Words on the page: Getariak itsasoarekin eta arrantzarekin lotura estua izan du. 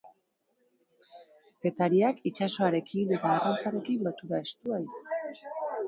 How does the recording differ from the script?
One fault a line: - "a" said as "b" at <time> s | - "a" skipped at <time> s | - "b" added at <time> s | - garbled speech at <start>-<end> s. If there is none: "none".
- "izan" skipped at 4.8 s